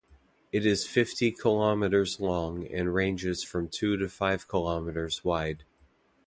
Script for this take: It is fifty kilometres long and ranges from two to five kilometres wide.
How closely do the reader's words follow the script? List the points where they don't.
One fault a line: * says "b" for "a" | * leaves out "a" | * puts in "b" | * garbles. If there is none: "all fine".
all fine